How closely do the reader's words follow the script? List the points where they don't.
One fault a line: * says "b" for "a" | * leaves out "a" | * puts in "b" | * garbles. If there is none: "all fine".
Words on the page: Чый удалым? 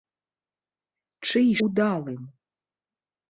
all fine